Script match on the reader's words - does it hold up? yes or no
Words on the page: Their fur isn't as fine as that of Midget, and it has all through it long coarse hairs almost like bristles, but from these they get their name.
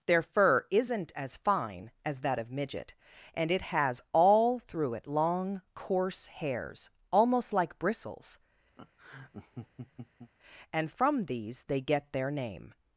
no